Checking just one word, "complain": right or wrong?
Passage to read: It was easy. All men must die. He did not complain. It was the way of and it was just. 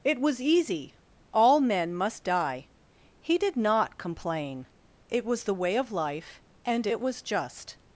right